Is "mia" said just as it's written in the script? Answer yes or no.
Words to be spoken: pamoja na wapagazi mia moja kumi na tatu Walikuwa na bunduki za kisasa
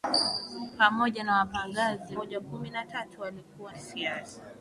no